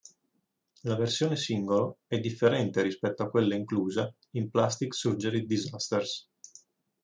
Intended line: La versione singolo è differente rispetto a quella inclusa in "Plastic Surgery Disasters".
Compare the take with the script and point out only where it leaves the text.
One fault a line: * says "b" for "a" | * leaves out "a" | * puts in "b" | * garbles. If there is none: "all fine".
all fine